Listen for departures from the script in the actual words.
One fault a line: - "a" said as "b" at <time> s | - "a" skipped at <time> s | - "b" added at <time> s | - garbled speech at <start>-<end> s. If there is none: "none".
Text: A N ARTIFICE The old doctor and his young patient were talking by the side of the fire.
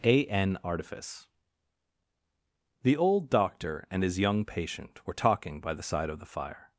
none